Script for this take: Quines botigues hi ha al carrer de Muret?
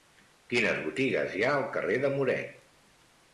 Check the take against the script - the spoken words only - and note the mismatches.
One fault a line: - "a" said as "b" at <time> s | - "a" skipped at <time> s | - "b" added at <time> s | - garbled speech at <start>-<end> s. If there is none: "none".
none